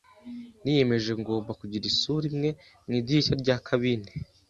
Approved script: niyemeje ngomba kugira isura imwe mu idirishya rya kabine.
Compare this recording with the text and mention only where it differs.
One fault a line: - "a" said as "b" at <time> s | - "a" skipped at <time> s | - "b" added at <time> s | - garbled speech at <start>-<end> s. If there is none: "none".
none